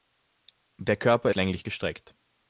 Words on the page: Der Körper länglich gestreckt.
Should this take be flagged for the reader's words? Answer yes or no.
no